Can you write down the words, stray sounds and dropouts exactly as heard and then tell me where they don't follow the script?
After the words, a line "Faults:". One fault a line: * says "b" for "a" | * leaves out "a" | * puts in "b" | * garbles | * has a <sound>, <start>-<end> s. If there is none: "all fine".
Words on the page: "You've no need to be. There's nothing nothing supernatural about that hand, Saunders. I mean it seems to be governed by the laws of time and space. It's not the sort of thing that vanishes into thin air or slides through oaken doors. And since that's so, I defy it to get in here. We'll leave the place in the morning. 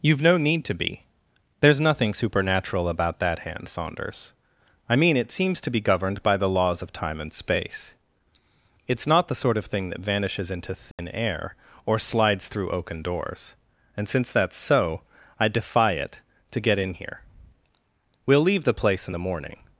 "You've no need to be. There's nothing supernatural about that hand, Saunders. I mean it seems to be governed by the laws of time and space. It's not the sort of thing that vanishes into thin air or slides through oaken doors. And since that's so, I defy it to get in here. We'll leave the place in the morning.
Faults:
* leaves out "nothing"
* has a dropout, 10.9-11.0 s